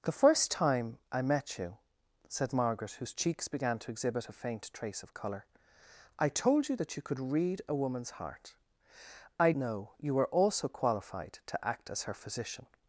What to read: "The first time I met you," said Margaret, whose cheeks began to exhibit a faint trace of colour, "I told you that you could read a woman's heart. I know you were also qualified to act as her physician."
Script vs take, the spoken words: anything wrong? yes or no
no